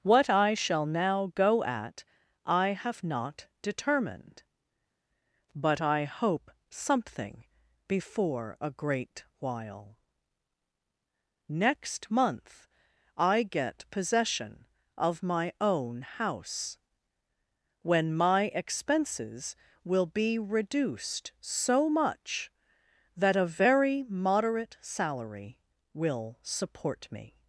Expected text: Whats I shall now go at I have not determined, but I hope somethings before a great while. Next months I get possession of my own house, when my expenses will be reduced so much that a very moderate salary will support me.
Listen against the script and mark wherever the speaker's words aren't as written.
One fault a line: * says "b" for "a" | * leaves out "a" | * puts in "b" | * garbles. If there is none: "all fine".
* says "What" for "Whats"
* says "something" for "somethings"
* says "month" for "months"